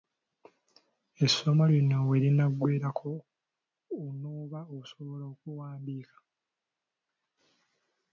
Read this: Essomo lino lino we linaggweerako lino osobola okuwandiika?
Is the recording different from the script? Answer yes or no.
yes